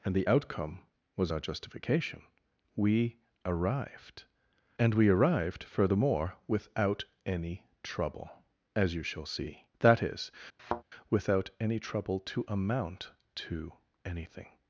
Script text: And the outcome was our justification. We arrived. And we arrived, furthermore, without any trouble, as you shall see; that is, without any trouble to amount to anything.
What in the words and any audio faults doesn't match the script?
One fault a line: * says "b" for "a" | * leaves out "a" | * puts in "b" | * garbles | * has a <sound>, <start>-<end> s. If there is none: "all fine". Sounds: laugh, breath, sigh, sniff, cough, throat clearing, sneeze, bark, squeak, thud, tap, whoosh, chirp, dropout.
* has a thud, 10.6-10.8 s